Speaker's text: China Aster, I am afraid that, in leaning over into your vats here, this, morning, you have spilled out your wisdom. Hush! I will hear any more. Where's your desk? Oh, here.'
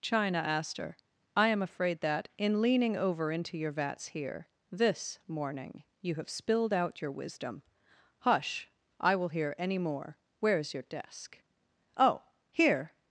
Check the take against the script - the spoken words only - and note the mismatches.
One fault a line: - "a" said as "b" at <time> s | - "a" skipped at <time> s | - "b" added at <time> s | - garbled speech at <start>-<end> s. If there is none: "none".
none